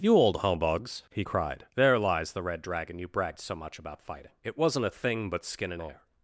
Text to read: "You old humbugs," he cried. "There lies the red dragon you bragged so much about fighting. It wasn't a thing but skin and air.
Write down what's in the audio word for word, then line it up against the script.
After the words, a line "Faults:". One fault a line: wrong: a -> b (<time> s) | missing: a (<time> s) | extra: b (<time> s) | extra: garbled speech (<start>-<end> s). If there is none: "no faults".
"You old humbugs," he cried. "There lies the red dragon you bragged so much about fighting. It wasn't a thing but skin and air.
Faults:
no faults